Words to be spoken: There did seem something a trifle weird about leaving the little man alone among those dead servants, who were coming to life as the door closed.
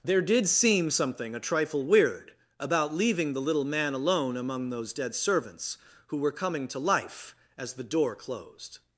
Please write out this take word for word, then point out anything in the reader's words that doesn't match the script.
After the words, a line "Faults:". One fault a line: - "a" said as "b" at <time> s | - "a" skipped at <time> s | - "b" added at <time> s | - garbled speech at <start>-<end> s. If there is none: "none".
There did seem something a trifle weird about leaving the little man alone among those dead servants, who were coming to life as the door closed.
Faults:
none